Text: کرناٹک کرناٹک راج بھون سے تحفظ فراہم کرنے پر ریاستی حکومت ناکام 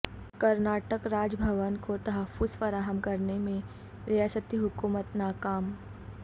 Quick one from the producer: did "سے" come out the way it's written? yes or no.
no